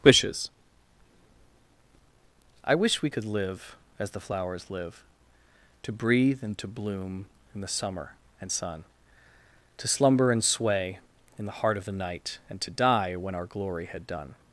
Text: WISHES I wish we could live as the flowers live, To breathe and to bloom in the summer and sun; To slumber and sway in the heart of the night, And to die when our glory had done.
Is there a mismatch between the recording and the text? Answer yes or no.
no